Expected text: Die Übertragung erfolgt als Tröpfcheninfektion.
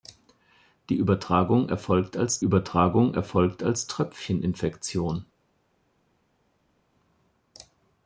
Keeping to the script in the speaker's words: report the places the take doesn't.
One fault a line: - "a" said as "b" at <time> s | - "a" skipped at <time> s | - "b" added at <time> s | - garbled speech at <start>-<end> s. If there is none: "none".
- "Übertragung erfolgt als" added at 2.4 s